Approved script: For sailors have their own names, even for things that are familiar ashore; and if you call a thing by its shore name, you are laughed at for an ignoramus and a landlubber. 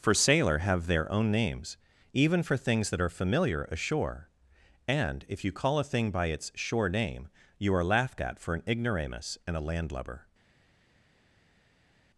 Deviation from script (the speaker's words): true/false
true